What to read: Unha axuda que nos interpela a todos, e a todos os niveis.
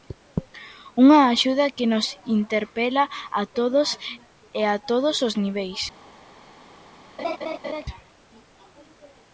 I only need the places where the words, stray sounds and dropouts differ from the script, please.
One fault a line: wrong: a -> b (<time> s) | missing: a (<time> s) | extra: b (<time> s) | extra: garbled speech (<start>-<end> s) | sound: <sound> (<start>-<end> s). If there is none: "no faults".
sound: laugh (7.2-7.9 s)